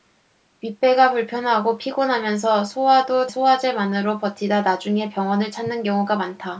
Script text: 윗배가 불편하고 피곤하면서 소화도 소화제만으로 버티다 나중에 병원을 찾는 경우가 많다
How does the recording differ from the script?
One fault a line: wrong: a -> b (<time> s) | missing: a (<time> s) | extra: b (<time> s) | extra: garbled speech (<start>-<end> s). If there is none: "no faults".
no faults